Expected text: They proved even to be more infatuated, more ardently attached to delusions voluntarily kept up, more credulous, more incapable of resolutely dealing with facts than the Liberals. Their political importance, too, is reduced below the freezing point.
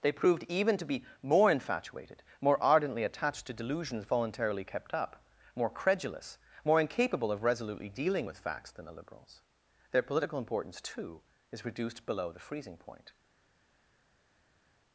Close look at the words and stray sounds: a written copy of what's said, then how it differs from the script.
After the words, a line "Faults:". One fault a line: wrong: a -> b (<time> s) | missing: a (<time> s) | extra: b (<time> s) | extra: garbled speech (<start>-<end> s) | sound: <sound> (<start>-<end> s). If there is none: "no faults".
They proved even to be more infatuated, more ardently attached to delusions voluntarily kept up, more credulous, more incapable of resolutely dealing with facts than the Liberals. Their political importance, too, is reduced below the freezing point.
Faults:
no faults